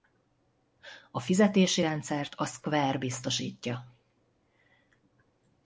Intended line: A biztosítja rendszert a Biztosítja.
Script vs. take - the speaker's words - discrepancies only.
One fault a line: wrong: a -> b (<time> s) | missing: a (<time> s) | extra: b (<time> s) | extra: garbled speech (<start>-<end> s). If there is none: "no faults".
wrong: biztosítja -> fizetési (1.2 s)
extra: Square (2.4 s)